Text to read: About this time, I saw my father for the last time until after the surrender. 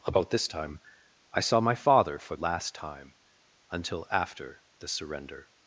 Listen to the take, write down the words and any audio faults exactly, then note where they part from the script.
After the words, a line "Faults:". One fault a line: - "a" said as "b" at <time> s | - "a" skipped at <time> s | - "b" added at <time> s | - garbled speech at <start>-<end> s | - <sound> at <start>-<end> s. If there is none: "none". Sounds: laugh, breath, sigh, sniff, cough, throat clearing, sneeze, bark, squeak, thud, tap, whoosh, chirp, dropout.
About this time, I saw my father for last time until after the surrender.
Faults:
- "the" skipped at 2.4 s